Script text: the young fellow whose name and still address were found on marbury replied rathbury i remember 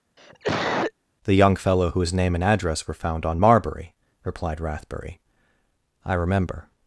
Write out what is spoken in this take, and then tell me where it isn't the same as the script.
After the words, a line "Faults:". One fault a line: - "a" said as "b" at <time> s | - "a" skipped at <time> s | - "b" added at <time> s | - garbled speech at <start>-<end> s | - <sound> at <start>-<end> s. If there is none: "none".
the young fellow whose name and address were found on marbury replied rathbury i remember
Faults:
- cough at 0.2-0.9 s
- "still" skipped at 2.4 s